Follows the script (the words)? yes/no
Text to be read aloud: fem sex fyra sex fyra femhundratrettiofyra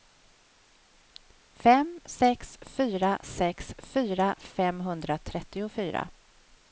yes